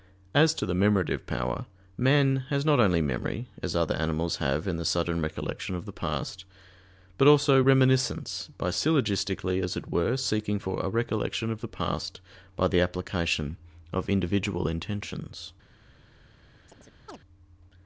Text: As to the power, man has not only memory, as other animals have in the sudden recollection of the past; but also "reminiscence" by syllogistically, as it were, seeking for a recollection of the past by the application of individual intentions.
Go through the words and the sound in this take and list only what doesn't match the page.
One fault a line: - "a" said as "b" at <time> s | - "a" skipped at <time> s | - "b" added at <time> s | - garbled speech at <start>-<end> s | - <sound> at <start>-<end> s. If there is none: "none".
- "memorative" added at 0.7 s
- chirp at 16.7-17.2 s